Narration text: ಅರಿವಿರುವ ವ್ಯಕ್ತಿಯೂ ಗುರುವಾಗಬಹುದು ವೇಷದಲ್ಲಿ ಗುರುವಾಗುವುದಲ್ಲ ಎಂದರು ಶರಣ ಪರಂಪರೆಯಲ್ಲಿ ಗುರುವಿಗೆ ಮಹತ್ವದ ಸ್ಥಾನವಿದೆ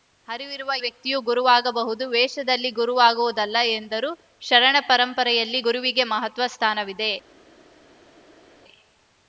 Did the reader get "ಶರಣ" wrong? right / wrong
right